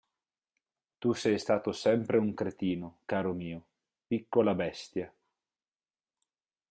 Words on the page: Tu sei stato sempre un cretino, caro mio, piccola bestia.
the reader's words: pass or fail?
pass